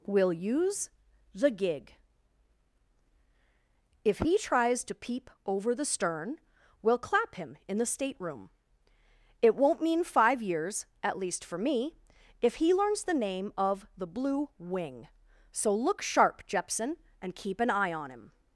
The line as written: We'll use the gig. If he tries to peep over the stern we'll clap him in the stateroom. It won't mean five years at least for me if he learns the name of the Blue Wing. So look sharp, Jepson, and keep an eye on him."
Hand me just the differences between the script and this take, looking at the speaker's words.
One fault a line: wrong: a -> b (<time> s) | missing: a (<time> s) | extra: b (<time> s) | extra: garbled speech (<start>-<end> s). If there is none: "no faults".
no faults